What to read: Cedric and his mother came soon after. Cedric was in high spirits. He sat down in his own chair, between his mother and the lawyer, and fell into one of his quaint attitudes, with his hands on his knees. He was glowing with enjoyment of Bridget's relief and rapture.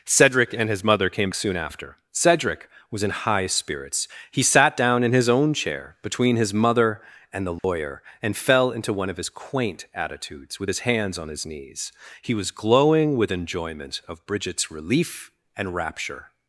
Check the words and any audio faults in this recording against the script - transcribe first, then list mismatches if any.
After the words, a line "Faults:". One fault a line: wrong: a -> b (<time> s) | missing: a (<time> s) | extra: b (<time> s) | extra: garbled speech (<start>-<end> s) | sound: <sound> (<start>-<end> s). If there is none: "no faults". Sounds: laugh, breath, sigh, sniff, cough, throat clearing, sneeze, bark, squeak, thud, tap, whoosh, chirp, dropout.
Cedric and his mother came soon after. Cedric was in high spirits. He sat down in his own chair, between his mother and the lawyer, and fell into one of his quaint attitudes, with his hands on his knees. He was glowing with enjoyment of Bridget's relief and rapture.
Faults:
sound: dropout (7.6-7.6 s)